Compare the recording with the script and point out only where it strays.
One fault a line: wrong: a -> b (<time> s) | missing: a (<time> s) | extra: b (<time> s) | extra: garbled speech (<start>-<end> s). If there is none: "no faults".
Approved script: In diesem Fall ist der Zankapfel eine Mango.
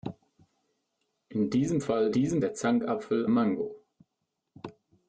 wrong: ist -> diesem (2.1 s)
missing: eine (3.3 s)